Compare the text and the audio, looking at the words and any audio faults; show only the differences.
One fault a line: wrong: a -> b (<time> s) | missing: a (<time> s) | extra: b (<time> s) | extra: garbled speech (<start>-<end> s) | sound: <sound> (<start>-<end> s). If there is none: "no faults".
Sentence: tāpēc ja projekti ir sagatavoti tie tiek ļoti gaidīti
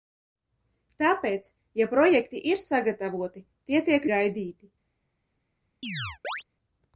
missing: ļoti (4.1 s)
sound: chirp (5.8-6.4 s)